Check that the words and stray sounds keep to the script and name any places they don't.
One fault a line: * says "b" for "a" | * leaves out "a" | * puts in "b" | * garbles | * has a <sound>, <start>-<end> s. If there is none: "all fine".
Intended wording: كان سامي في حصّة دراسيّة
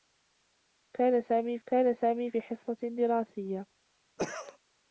* puts in "كان سامي"
* has a cough, 4.2-4.6 s